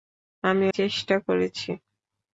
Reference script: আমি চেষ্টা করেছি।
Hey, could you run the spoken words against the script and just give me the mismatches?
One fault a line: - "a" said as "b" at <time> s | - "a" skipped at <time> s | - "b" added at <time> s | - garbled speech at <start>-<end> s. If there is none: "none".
none